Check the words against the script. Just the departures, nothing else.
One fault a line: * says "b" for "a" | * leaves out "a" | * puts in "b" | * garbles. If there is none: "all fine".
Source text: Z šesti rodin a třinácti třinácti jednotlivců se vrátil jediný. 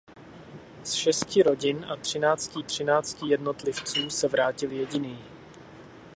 all fine